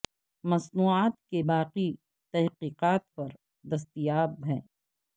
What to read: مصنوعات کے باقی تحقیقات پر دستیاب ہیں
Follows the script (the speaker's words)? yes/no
yes